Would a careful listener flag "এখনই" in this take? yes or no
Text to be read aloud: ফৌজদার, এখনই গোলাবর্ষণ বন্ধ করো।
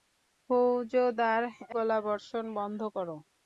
yes